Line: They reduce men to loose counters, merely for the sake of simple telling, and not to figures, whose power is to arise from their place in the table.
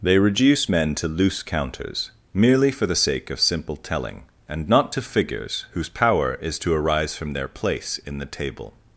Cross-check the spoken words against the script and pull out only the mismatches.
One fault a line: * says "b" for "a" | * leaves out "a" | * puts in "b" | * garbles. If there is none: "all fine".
all fine